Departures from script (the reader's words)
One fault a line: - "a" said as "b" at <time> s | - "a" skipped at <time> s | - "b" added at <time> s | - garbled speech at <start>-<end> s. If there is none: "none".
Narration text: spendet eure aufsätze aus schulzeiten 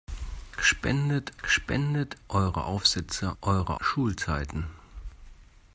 - "spendet" added at 1.4 s
- "aus" said as "eure" at 3.4 s